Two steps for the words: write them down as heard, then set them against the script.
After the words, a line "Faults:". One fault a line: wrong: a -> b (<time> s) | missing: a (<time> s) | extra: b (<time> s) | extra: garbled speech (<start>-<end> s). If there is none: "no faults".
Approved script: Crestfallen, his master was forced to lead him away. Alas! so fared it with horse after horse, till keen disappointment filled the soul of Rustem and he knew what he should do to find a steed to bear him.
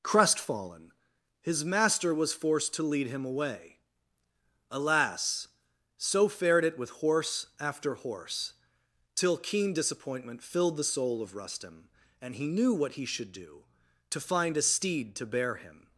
Crestfallen, his master was forced to lead him away. Alas! so fared it with horse after horse, till keen disappointment filled the soul of Rustem and he knew what he should do to find a steed to bear him.
Faults:
no faults